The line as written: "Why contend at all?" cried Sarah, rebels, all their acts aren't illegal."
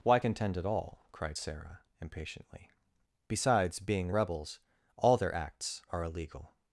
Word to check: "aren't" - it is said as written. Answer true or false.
false